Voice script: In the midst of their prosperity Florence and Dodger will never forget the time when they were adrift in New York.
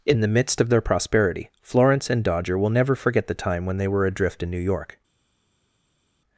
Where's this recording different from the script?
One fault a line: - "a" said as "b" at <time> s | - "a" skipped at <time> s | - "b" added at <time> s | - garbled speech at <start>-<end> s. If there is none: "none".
none